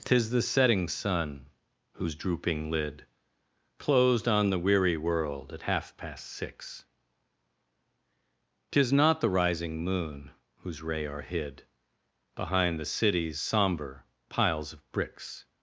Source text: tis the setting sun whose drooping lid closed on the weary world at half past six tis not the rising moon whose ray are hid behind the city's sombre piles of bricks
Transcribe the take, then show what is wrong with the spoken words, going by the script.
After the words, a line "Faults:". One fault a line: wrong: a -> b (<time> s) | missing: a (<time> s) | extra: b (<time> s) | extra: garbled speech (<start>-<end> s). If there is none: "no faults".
tis the setting sun whose drooping lid closed on the weary world at half past six tis not the rising moon whose ray are hid behind the city's sombre piles of bricks
Faults:
no faults